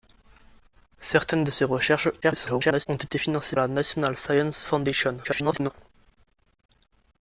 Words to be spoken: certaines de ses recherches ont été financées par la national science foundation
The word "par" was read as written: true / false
false